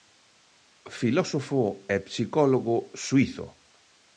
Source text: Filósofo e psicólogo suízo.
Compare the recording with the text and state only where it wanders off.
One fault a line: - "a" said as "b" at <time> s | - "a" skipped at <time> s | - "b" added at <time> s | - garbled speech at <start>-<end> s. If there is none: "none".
none